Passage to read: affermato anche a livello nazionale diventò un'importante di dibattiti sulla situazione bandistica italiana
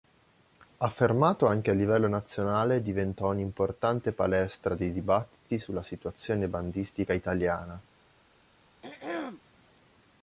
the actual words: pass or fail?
fail